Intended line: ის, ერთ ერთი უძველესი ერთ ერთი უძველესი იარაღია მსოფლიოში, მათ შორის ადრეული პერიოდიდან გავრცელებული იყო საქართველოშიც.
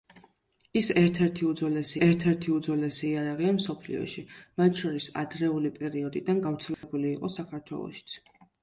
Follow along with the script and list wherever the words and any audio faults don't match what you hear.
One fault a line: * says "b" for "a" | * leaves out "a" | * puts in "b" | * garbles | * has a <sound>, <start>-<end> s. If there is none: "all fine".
* has a dropout, 6.7-6.8 s